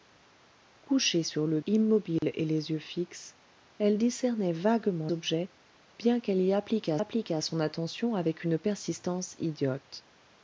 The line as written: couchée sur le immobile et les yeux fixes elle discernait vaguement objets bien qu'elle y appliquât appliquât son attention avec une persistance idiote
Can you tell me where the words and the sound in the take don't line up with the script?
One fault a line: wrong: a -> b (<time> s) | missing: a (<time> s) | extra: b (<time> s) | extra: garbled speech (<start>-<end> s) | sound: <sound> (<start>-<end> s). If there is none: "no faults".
sound: dropout (2.2-2.2 s)